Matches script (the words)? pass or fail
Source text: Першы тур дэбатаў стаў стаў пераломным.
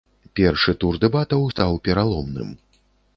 fail